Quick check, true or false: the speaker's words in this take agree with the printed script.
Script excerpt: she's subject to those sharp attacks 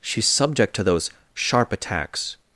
true